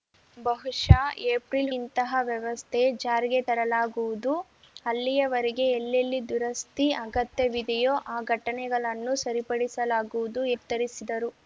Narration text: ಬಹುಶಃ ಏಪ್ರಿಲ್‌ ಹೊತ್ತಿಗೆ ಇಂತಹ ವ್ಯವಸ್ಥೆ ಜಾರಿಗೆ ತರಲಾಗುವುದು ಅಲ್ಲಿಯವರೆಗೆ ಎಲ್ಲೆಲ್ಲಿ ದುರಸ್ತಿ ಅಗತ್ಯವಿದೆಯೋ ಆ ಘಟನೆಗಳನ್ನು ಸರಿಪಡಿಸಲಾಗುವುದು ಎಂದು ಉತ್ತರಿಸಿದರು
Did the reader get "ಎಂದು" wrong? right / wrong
wrong